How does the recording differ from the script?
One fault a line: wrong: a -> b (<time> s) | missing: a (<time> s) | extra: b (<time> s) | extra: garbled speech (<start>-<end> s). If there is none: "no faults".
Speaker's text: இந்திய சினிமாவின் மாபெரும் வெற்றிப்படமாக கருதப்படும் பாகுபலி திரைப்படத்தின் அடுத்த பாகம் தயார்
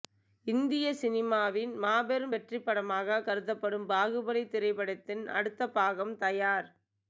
no faults